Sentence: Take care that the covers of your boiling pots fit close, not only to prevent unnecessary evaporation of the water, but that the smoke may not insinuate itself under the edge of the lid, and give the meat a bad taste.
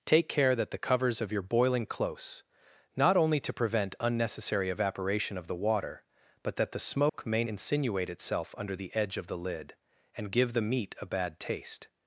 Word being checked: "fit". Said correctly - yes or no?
no